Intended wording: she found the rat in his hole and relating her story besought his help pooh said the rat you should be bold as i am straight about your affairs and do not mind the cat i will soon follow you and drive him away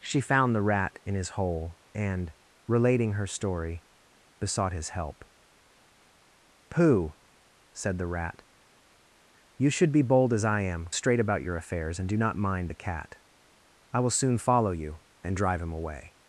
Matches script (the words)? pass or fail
pass